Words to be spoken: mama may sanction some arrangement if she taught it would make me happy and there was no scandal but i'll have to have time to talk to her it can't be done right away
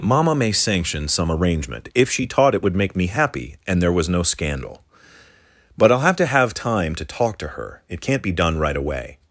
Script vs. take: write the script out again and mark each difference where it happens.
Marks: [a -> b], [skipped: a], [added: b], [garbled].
mama may sanction some arrangement if she taught it would make me happy and there was no scandal but i'll have to have time to talk to her it can't be done right away